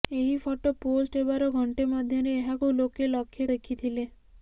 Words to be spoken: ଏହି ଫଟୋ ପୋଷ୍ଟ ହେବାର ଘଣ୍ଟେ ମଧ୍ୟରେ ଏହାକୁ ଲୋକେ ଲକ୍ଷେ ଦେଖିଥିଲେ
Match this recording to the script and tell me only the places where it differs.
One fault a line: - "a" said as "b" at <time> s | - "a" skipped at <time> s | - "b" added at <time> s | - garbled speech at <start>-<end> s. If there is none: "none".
none